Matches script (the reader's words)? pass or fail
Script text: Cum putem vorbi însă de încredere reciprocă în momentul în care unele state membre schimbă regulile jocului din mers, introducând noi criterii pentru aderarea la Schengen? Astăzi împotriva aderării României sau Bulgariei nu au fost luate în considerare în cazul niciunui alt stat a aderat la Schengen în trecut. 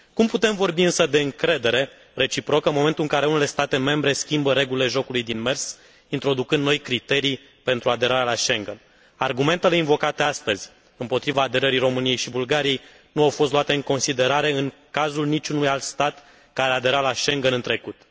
fail